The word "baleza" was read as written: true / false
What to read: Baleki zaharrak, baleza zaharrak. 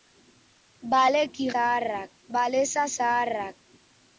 true